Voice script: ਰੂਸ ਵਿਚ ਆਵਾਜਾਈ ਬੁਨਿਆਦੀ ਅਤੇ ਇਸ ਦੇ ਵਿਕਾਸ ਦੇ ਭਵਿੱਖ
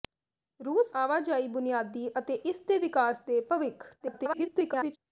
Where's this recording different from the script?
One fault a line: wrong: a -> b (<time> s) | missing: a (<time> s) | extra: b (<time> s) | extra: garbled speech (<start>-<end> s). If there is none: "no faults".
missing: ਵਿਚ (0.9 s)
extra: garbled speech (4.0-5.0 s)